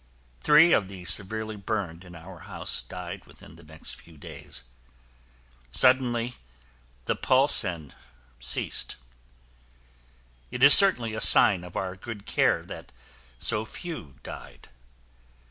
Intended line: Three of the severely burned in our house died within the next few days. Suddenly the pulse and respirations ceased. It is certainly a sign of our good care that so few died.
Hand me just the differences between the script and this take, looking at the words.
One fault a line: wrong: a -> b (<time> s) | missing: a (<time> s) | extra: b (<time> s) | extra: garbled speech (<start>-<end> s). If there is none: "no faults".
missing: respirations (7.9 s)